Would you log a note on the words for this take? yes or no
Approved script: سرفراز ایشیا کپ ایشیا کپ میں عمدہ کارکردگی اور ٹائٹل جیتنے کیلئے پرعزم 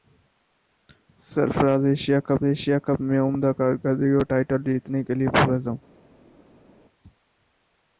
no